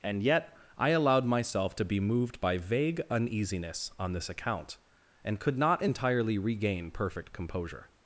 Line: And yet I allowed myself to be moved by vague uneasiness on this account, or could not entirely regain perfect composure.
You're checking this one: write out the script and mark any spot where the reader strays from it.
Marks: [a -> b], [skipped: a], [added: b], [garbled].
And yet I allowed myself to be moved by vague uneasiness on this account, [or -> and] could not entirely regain perfect composure.